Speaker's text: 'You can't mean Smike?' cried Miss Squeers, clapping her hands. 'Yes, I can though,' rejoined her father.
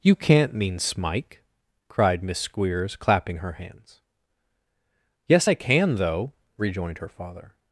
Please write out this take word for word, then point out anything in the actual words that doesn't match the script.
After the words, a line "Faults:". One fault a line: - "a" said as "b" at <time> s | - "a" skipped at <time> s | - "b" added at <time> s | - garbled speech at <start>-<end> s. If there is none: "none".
'You can't mean Smike?' cried Miss Squeers, clapping her hands. 'Yes, I can though,' rejoined her father.
Faults:
none